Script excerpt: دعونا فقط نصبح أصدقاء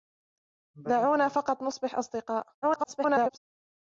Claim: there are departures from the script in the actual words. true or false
true